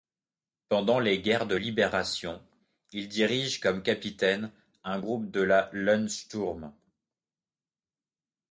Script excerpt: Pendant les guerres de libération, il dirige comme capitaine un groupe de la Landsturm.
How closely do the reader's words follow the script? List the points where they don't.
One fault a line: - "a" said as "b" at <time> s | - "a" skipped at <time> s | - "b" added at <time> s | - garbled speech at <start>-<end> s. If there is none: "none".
none